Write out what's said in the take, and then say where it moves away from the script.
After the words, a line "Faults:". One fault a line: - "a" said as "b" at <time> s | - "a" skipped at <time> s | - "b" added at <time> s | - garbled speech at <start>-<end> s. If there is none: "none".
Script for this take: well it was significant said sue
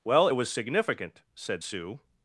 well it was significant said sue
Faults:
none